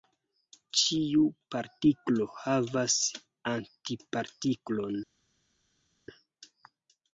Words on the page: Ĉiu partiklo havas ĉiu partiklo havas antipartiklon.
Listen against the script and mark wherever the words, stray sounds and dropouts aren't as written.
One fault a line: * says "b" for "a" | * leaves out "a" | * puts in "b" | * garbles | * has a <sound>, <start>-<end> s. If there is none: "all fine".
* leaves out "ĉiu partiklo havas"